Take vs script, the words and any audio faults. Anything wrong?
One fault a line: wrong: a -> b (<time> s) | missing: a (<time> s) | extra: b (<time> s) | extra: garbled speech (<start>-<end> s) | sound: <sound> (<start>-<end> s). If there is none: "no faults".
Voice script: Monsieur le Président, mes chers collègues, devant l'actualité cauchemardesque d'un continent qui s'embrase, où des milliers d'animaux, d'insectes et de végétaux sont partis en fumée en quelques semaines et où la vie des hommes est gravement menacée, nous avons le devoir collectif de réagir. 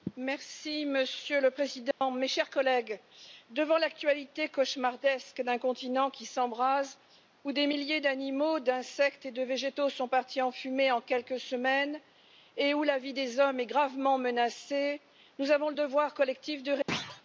sound: dropout (1.9-2.0 s)
sound: thud (16.9-17.2 s)